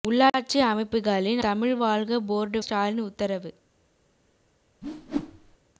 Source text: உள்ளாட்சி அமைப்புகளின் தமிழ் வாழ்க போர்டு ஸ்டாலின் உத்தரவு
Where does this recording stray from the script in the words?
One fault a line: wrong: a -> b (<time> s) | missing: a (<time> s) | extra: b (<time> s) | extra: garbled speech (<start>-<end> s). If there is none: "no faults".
no faults